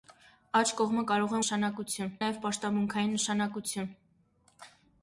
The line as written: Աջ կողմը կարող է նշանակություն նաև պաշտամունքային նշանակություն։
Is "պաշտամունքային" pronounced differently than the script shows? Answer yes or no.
no